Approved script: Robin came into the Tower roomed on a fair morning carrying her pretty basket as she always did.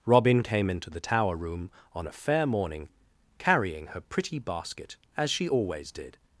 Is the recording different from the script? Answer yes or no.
yes